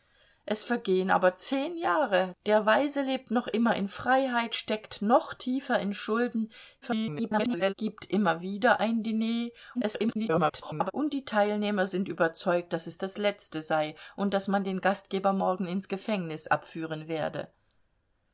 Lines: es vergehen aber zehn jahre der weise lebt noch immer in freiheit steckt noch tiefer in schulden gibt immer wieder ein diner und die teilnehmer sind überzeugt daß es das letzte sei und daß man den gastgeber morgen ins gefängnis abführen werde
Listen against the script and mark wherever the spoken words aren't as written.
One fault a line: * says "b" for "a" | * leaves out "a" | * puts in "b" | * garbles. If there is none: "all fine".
* garbles
* garbles